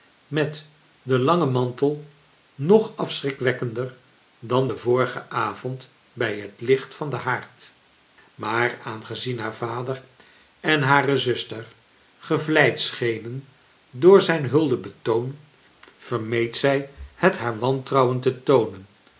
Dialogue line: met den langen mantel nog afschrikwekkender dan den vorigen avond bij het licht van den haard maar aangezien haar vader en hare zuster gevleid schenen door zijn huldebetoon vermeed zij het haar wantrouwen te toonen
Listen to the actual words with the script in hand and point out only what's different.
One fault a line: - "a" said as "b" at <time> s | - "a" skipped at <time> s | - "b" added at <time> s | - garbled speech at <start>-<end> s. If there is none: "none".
none